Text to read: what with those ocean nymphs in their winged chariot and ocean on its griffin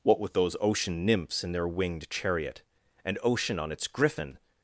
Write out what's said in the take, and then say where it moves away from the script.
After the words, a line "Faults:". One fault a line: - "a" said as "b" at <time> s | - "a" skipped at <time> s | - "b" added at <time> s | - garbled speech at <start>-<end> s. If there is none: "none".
what with those ocean nymphs in their winged chariot and ocean on its griffin
Faults:
none